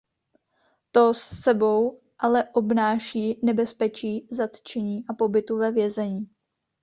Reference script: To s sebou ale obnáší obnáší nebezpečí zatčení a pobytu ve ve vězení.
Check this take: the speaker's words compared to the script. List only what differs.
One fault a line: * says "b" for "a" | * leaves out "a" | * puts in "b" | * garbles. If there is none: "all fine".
* leaves out "obnáší"
* leaves out "ve"